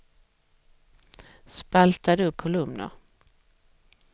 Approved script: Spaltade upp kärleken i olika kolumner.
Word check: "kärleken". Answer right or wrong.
wrong